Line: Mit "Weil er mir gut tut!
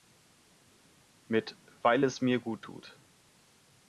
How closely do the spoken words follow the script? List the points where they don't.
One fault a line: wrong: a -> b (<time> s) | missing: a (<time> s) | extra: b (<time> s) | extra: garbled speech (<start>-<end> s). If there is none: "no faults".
wrong: er -> es (2.0 s)